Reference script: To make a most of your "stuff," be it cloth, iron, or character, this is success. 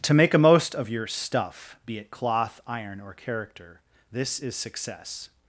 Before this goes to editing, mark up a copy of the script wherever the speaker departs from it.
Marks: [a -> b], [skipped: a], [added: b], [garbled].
To make a most of your "stuff," be it cloth, iron, or character, this is success.